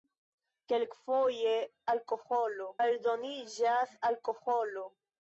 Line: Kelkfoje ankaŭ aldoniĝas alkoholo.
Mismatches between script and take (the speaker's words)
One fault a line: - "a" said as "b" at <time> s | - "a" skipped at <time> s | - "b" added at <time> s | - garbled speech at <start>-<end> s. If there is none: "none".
- "ankaŭ" said as "alkoholo" at 2.0 s